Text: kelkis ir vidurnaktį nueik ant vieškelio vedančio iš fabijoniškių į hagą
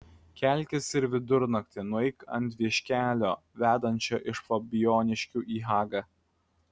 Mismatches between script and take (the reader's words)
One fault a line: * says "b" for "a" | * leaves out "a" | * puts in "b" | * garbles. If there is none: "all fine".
all fine